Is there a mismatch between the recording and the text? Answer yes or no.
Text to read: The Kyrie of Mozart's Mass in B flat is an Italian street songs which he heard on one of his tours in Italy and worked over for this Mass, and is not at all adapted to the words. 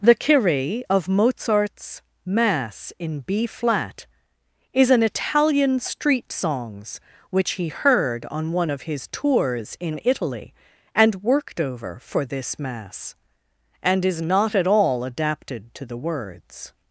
no